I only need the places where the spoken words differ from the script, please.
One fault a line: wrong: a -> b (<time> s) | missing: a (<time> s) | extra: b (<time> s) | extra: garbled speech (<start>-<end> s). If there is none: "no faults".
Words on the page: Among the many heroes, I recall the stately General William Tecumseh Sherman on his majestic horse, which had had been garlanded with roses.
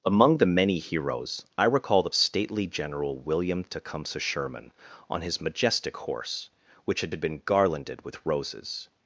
no faults